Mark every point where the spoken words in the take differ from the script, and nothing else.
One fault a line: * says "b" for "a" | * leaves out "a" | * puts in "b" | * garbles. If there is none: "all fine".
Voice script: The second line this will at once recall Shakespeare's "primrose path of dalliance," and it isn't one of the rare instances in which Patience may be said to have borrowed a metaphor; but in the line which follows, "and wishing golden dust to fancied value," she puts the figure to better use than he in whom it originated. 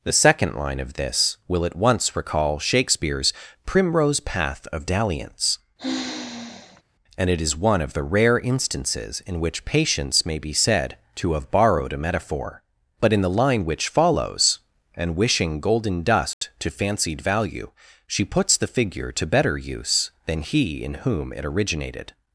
* puts in "of"
* says "is" for "isn't"